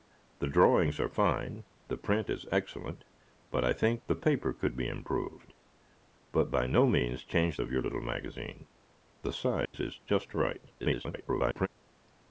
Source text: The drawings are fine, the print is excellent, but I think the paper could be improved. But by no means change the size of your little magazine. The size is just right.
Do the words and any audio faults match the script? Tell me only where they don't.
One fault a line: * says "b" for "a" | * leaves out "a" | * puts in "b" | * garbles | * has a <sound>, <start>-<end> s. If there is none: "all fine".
* leaves out "the size"
* has a dropout, 9.7-9.7 s
* garbles